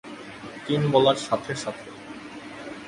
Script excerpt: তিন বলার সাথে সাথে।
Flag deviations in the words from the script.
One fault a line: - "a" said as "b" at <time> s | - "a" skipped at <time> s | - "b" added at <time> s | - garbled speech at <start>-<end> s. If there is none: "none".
none